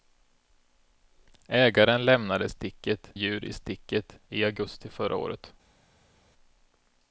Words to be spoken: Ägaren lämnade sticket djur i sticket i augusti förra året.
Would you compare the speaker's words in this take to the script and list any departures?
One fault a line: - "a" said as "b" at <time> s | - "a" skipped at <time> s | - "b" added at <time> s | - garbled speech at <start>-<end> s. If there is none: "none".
none